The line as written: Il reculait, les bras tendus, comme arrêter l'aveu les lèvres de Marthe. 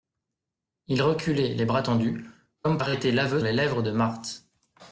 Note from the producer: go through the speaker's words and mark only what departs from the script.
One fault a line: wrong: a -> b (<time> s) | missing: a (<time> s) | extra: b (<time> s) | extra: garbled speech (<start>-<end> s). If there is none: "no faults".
no faults